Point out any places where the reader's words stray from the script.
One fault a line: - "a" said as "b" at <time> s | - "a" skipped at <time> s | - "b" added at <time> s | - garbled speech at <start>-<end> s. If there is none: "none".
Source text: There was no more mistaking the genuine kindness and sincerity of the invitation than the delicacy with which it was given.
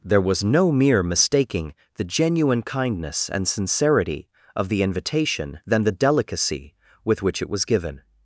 - "more" said as "mere" at 0.7 s